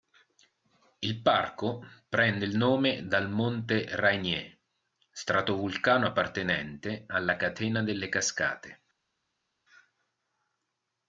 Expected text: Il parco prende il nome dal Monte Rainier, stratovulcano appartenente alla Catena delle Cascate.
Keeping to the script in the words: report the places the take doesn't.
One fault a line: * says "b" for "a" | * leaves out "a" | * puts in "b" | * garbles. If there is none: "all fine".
all fine